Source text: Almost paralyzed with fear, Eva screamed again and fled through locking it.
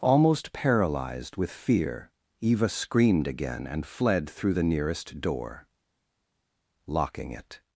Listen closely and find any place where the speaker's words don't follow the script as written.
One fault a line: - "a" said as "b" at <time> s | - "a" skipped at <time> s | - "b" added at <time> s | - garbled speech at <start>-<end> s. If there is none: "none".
- "the nearest door" added at 4.5 s